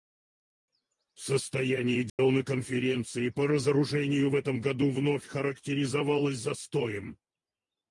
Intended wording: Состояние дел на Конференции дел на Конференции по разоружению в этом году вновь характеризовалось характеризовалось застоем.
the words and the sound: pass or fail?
fail